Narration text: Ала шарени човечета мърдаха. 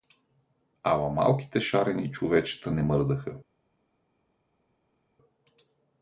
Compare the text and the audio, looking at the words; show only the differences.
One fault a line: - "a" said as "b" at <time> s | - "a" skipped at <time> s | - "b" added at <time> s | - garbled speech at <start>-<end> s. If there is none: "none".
- "малките" added at 1.1 s
- "не" added at 2.7 s